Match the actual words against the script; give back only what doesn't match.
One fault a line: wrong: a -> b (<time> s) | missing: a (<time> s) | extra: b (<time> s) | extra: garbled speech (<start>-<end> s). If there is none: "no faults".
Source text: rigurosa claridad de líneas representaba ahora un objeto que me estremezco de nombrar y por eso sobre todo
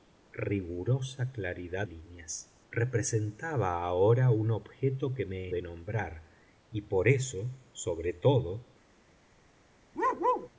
missing: de (1.9 s)
missing: estremezco (5.5 s)